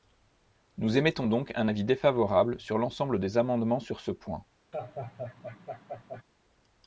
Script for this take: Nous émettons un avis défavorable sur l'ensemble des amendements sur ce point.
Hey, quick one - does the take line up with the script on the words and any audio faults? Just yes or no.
no